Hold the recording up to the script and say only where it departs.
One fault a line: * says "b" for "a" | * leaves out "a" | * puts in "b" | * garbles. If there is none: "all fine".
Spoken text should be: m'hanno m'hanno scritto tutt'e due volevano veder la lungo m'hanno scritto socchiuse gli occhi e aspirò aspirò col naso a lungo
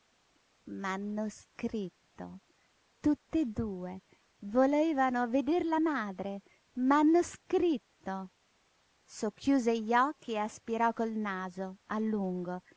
* leaves out "m'hanno"
* says "madre" for "lungo"
* leaves out "aspirò"